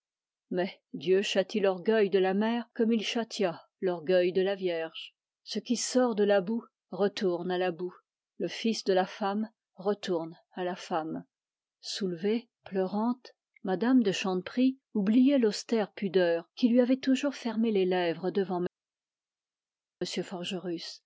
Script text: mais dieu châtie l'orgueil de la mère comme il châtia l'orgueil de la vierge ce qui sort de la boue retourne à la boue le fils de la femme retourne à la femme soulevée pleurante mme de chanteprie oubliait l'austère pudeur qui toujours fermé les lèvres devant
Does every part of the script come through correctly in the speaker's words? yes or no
no